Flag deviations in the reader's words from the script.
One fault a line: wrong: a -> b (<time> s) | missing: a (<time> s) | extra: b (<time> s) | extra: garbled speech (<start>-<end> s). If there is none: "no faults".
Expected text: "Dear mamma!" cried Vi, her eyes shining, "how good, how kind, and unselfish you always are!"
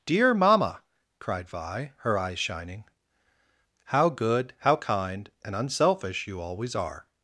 no faults